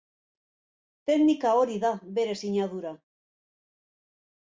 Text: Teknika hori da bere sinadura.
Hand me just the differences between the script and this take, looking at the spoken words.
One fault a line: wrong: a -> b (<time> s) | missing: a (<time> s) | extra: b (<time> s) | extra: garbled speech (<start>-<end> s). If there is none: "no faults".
no faults